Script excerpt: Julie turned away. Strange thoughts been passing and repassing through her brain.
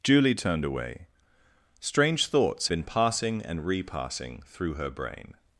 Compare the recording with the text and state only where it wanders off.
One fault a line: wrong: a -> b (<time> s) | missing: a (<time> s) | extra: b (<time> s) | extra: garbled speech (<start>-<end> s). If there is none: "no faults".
no faults